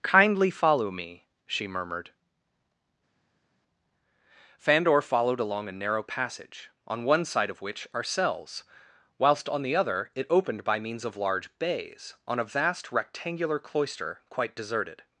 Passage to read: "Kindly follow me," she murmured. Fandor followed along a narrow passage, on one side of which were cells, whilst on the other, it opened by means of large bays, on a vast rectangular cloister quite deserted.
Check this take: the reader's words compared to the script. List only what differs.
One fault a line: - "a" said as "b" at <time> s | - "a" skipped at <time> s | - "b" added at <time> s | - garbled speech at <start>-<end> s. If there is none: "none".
- "were" said as "are" at 7.9 s